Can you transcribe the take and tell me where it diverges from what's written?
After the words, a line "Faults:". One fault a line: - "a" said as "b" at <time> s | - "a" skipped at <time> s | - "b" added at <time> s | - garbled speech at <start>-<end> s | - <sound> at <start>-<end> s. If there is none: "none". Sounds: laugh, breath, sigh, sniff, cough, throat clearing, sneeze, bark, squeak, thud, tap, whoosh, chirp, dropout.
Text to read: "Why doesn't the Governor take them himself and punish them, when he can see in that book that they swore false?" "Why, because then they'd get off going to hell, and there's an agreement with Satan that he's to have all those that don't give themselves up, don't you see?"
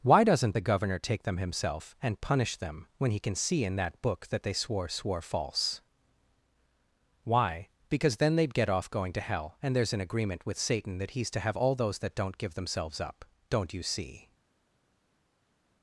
"Why doesn't the Governor take them himself and punish them, when he can see in that book that they swore swore false?" "Why, because then they'd get off going to hell, and there's an agreement with Satan that he's to have all those that don't give themselves up, don't you see?"
Faults:
- "swore" added at 4.9 s